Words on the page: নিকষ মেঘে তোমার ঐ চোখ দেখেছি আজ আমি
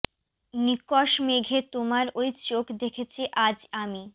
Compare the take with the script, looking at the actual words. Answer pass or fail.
pass